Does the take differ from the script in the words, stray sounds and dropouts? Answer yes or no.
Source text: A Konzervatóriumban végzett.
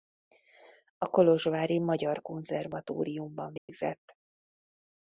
yes